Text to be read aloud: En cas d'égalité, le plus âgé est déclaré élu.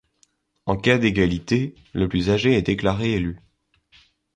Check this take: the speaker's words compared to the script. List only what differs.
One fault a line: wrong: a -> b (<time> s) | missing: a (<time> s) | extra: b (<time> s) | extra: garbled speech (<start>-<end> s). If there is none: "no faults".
no faults